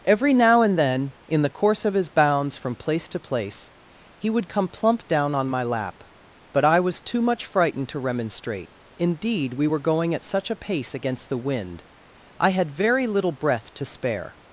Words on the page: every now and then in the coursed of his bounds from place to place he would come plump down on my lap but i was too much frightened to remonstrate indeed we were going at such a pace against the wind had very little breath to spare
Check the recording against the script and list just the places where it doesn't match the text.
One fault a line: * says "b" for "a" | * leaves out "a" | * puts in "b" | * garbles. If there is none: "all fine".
* says "course" for "coursed"
* puts in "i"